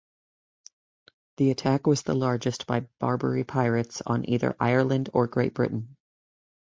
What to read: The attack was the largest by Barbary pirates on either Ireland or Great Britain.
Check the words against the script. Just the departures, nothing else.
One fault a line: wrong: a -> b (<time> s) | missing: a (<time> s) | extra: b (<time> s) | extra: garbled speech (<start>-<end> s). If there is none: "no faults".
no faults